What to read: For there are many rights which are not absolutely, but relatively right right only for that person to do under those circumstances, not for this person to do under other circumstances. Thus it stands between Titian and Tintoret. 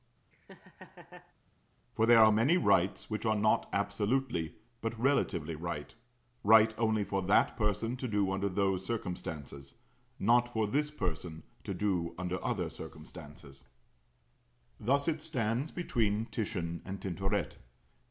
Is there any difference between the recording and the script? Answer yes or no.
no